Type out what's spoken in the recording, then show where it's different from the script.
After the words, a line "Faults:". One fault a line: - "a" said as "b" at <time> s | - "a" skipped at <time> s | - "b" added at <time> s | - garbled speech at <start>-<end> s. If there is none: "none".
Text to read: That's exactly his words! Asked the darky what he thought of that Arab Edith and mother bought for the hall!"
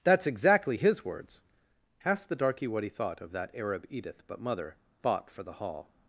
That's exactly his words! Asked the darky what he thought of that Arab Edith but mother bought for the hall!"
Faults:
- "and" said as "but" at 4.3 s